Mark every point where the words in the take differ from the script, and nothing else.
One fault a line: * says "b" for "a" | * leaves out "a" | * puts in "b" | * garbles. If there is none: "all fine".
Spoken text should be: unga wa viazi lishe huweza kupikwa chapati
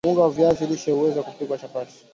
all fine